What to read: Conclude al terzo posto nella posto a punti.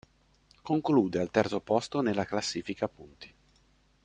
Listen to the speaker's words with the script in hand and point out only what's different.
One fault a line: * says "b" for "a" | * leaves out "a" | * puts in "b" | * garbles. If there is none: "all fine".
* says "classifica" for "posto"